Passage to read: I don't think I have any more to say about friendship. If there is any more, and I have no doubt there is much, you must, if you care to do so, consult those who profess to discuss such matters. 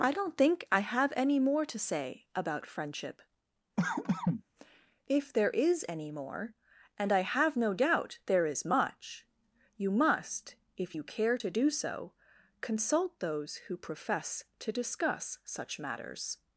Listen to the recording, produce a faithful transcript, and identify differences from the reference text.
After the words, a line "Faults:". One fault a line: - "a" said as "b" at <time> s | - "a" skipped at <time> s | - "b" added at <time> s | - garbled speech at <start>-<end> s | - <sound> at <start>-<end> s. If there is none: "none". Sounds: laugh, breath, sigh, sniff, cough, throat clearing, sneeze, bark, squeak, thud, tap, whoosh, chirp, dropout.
I don't think I have any more to say about friendship. If there is any more, and I have no doubt there is much, you must, if you care to do so, consult those who profess to discuss such matters.
Faults:
- cough at 3.8-4.4 s